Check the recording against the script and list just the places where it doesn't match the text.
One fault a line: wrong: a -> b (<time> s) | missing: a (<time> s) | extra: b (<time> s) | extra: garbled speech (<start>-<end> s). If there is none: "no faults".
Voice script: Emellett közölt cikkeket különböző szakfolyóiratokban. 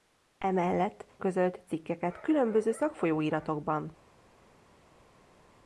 no faults